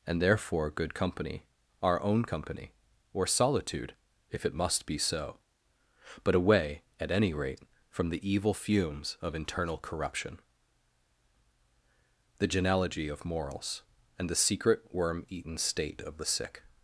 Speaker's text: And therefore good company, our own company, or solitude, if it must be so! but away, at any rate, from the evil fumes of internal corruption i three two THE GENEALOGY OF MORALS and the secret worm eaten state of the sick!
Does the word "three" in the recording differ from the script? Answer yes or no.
yes